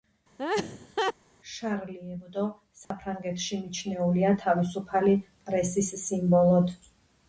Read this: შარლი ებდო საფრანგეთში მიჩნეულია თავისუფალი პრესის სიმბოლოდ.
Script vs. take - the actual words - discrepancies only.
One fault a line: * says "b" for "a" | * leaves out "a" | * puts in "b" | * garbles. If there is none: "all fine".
all fine